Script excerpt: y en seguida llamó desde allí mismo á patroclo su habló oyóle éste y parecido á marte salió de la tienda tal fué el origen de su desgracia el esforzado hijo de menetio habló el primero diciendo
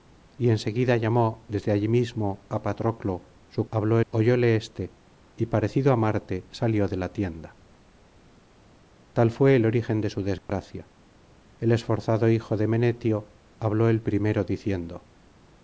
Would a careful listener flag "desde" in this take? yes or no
no